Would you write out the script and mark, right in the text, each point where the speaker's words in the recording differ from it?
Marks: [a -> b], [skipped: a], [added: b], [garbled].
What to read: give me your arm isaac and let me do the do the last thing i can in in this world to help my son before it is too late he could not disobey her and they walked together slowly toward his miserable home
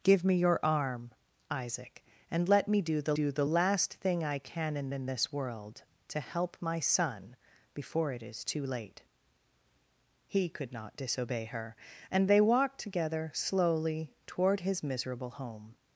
give me your arm isaac and let me do the do the last thing i can in in this world to help my son before it is too late he could not disobey her and they walked together slowly toward his miserable home